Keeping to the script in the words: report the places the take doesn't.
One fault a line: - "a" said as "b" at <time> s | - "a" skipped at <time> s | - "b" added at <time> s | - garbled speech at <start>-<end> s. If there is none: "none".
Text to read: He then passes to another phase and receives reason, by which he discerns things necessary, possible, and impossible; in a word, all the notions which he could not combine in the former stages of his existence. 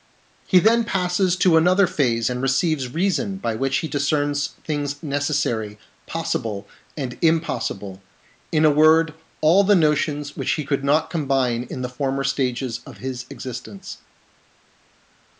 none